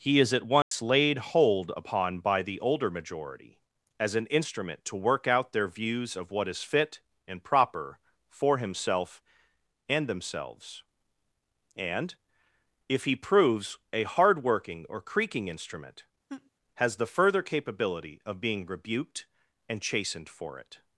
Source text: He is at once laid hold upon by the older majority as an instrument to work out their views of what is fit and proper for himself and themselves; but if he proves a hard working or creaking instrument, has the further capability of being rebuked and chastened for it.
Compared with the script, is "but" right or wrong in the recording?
wrong